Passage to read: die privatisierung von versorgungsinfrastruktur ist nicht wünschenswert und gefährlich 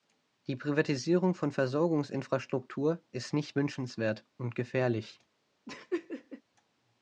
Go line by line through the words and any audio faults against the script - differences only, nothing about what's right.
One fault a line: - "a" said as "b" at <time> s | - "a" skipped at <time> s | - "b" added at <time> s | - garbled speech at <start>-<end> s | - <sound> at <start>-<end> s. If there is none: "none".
- laugh at 5.7-6.4 s